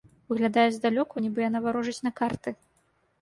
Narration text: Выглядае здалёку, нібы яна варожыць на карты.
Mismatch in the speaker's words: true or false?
false